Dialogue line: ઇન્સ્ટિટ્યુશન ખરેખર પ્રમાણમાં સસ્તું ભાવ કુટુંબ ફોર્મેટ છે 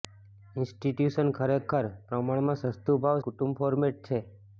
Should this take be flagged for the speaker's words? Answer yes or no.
no